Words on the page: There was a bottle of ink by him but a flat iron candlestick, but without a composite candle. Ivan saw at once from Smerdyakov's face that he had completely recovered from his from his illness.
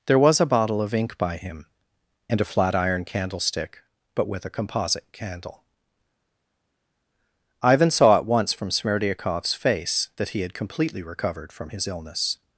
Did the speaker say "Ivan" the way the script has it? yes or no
yes